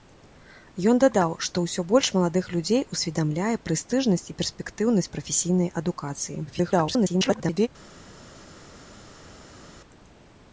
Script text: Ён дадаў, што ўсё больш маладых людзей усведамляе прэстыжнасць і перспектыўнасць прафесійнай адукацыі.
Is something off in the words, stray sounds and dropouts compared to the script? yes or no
yes